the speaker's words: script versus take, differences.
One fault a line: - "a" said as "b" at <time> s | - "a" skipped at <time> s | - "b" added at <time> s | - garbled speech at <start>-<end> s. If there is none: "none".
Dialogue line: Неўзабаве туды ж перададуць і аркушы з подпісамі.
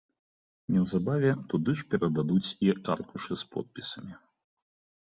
none